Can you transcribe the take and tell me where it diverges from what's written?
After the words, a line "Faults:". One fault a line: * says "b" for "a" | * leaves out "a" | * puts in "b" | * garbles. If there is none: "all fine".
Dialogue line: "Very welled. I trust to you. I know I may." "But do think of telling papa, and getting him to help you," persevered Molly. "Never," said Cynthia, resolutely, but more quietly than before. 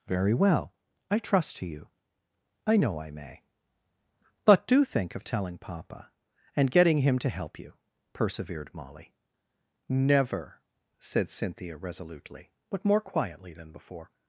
"Very well. I trust to you. I know I may." "But do think of telling papa, and getting him to help you," persevered Molly. "Never," said Cynthia, resolutely, but more quietly than before.
Faults:
* says "well" for "welled"